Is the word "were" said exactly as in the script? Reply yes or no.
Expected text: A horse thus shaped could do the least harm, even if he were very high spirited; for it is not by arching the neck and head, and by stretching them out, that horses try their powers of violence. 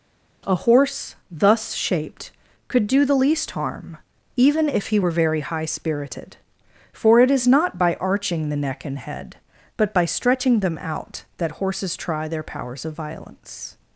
yes